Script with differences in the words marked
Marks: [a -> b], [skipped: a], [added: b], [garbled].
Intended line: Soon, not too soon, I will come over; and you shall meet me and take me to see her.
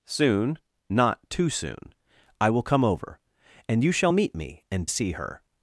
Soon, not too soon, I will come over; and you shall meet me and [skipped: take me to] see her.